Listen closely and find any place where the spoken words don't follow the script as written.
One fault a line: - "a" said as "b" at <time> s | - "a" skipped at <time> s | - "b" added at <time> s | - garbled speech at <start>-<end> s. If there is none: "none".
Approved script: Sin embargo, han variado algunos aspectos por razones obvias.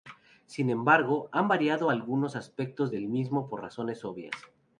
- "del mismo" added at 2.9 s